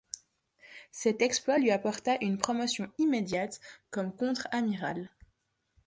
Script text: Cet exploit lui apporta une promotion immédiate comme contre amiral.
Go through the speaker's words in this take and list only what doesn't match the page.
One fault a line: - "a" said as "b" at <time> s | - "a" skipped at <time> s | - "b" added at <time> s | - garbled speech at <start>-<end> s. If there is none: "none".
none